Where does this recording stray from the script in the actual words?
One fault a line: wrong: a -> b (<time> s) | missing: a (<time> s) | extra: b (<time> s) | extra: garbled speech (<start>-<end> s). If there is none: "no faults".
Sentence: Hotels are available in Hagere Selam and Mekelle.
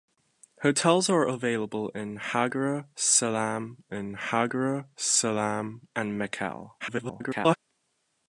extra: in Hagere Selam (3.9 s)
extra: garbled speech (6.8-7.6 s)